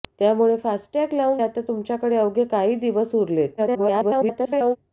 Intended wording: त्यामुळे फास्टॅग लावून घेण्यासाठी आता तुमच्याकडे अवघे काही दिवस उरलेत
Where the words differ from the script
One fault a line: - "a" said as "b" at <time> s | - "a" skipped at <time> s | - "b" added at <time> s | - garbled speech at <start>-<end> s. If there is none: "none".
- "घेण्यासाठी" skipped at 1.4 s
- garbled speech at 3.6-4.8 s